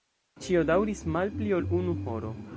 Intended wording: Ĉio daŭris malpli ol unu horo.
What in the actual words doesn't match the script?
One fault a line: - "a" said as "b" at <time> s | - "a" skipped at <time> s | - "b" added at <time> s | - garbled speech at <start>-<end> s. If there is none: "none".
none